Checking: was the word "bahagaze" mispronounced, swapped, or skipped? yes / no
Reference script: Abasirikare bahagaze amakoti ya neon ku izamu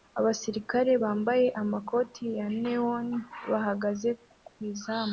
yes